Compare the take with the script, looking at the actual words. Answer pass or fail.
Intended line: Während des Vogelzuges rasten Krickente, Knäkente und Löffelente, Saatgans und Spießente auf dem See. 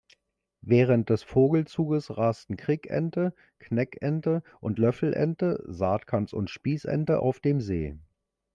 pass